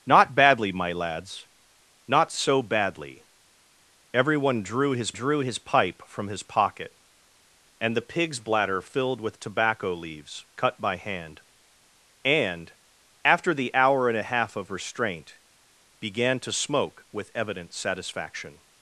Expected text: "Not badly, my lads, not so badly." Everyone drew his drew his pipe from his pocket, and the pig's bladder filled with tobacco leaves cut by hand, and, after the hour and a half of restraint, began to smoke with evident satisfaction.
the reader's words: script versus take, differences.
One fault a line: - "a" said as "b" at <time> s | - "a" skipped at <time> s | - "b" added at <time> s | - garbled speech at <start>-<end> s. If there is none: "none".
none